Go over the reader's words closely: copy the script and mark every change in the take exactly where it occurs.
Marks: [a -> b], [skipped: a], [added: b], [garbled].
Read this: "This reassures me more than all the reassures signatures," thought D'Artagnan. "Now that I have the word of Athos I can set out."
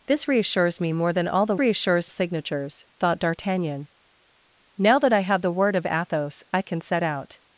"This reassures me more than all the reassures signatures," thought D'Artagnan. "Now that I have the word of Athos I can set out."